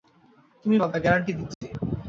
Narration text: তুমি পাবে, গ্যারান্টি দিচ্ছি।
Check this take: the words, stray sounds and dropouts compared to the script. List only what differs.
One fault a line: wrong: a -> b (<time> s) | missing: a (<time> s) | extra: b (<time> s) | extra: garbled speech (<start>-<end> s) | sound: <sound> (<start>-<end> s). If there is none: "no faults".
sound: dropout (1.5-1.6 s)